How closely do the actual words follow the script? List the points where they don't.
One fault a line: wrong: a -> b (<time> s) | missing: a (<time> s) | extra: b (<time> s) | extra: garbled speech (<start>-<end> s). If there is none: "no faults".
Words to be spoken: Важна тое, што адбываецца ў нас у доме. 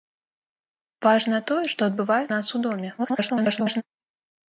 missing: ў (2.3 s)
extra: garbled speech (3.0-3.8 s)